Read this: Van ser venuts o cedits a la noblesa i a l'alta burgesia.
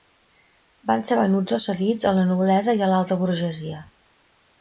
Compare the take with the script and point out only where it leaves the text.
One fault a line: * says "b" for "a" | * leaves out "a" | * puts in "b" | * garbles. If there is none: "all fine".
all fine